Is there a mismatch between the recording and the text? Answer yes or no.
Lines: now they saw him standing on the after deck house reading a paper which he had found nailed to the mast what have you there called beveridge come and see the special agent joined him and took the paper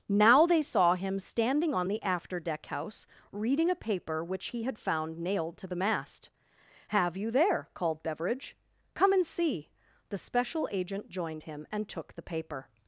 yes